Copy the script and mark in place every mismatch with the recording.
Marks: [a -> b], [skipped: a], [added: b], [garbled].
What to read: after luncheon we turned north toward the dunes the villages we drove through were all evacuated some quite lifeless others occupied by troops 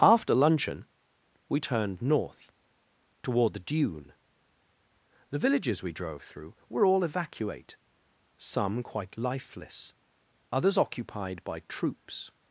after luncheon we turned north toward the [dunes -> dune] the villages we drove through were all [evacuated -> evacuate] some quite lifeless others occupied by troops